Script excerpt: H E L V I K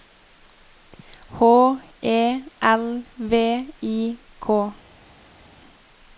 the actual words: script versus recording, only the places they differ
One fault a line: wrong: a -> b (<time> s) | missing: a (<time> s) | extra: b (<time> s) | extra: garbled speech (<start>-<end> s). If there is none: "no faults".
no faults